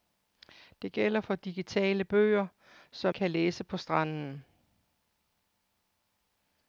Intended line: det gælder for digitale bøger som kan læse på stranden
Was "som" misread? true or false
false